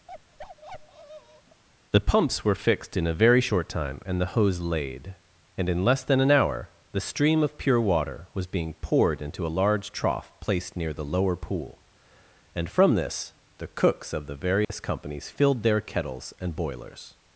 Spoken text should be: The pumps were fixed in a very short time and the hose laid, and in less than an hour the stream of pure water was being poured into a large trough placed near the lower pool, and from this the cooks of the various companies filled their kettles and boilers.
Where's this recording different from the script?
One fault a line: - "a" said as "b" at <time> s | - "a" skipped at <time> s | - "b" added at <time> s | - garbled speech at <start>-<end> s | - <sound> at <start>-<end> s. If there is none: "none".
- bark at 0.1-1.6 s
- dropout at 14.6-14.7 s